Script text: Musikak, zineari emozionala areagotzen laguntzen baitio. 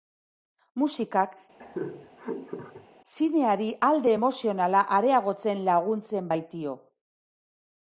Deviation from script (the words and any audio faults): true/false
true